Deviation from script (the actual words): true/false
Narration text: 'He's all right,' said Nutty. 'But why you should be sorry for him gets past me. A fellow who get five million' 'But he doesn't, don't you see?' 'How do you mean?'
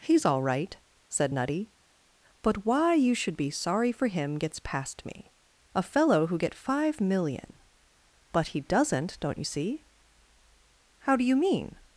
false